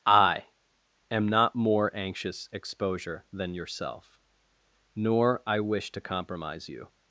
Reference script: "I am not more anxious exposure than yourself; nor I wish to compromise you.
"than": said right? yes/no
yes